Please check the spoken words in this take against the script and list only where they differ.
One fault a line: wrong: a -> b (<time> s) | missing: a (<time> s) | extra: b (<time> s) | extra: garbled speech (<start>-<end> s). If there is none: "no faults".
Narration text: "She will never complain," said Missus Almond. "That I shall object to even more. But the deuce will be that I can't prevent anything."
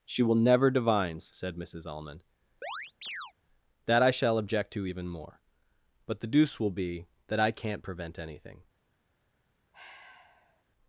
wrong: complain -> divines (0.7 s)